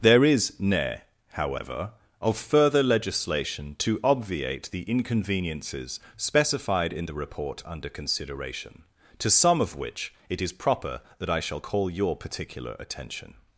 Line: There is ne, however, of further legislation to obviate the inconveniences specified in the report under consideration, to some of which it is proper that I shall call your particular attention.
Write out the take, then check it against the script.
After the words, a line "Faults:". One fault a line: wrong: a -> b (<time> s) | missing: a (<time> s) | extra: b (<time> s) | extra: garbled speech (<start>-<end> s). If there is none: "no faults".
There is ne, however, of further legislation to obviate the inconveniences specified in the report under consideration, to some of which it is proper that I shall call your particular attention.
Faults:
no faults